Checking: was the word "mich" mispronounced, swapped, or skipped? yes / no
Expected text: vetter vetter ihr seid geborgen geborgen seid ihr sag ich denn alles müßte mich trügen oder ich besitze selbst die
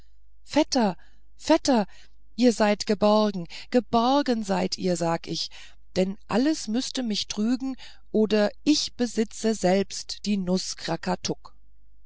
no